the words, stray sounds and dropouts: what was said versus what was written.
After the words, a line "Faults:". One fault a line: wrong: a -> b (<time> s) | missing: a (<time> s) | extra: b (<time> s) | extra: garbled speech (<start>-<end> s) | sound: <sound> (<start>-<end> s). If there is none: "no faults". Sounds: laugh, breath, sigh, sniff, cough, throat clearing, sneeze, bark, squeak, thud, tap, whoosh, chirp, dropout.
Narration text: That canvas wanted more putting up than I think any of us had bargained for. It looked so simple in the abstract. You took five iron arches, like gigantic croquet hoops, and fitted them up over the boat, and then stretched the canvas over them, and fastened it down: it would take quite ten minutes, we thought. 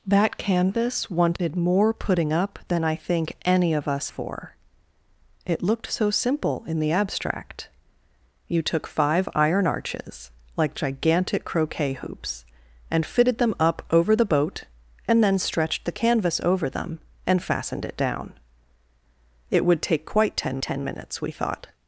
That canvas wanted more putting up than I think any of us for. It looked so simple in the abstract. You took five iron arches, like gigantic croquet hoops, and fitted them up over the boat, and then stretched the canvas over them, and fastened it down: it would take quite ten ten minutes, we thought.
Faults:
missing: had bargained (4.1 s)
extra: ten (20.6 s)